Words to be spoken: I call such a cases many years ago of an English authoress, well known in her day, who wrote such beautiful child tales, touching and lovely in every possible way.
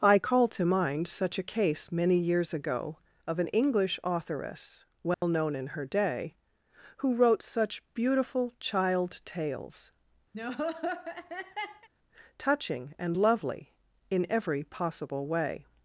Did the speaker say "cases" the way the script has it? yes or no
no